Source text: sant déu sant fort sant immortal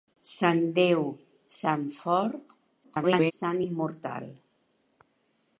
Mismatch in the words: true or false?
true